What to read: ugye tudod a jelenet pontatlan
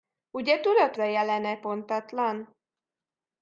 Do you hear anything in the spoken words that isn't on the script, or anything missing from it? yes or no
no